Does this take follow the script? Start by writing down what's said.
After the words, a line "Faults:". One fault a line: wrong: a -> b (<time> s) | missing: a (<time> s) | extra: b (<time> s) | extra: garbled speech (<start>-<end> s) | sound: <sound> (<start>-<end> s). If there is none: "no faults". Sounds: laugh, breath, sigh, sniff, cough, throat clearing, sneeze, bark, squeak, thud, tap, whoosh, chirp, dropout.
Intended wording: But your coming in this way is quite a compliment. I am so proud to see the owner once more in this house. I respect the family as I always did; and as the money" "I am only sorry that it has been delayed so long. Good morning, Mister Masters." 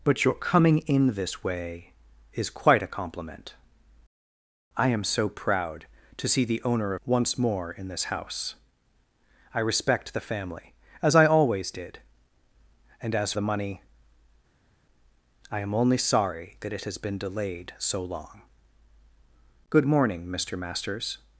But your coming in this way is quite a compliment. I am so proud to see the owner once more in this house. I respect the family as I always did; and as the money" "I am only sorry that it has been delayed so long. Good morning, Mister Masters."
Faults:
no faults